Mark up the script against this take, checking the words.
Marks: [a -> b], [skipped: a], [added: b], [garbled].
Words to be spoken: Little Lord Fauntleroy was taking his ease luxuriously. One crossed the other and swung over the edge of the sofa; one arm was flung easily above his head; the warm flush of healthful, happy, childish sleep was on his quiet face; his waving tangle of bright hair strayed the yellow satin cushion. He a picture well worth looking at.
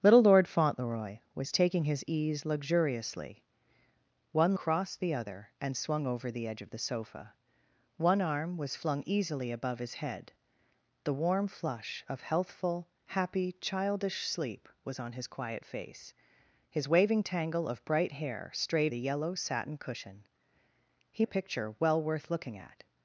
Little Lord Fauntleroy was taking his ease luxuriously. One crossed the other and swung over the edge of the sofa; one arm was flung easily above his head; the warm flush of healthful, happy, childish sleep was on his quiet face; his waving tangle of bright hair strayed the yellow satin cushion. He a picture well worth looking at.